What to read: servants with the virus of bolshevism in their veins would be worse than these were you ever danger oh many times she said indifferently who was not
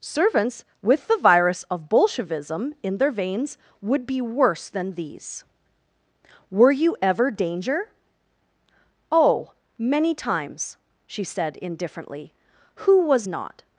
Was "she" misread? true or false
false